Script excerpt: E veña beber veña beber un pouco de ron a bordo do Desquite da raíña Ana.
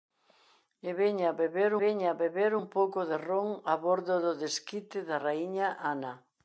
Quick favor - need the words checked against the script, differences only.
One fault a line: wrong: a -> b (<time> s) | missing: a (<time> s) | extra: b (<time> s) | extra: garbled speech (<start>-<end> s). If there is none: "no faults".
no faults